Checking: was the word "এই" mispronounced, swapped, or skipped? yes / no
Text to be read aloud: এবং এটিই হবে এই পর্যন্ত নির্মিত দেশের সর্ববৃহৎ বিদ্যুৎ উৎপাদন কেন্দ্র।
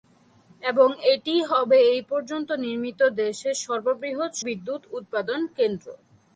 no